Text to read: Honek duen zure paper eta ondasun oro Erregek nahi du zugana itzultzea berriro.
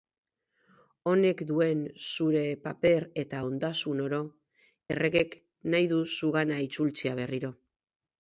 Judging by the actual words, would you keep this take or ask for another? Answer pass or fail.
pass